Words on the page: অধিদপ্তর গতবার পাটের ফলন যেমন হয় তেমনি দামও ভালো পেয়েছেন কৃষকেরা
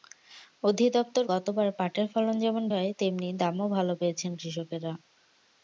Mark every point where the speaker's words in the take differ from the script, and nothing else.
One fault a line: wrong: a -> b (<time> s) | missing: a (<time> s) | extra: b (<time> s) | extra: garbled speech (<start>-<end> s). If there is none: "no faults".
no faults